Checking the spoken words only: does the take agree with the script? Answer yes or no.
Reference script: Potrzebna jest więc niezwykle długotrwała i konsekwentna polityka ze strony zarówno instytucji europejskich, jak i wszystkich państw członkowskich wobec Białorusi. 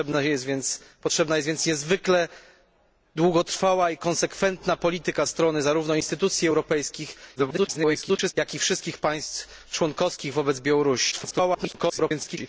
no